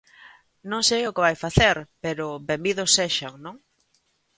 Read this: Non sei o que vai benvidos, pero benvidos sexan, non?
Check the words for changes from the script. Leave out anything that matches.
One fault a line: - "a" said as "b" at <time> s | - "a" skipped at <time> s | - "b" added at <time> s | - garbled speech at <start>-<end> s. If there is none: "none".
- "benvidos" said as "facer" at 1.4 s